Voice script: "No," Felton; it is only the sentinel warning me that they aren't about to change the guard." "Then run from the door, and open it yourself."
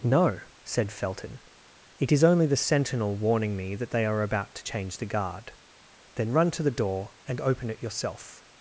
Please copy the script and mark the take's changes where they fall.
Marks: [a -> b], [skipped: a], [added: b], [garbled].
"No," [added: said] Felton; it is only the sentinel warning me that they [aren't -> are] about to change the guard." "Then run [from -> to] the door, and open it yourself."